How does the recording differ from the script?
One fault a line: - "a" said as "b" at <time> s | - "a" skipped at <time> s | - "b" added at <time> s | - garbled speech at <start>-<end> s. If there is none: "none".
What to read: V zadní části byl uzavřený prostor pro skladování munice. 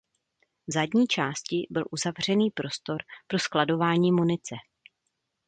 none